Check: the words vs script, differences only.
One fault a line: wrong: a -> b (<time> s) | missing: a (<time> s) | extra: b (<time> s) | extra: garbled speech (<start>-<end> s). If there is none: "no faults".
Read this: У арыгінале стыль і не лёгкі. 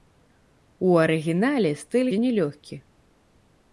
no faults